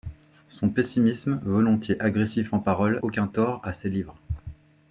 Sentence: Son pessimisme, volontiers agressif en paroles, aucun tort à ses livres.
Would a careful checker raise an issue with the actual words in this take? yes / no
no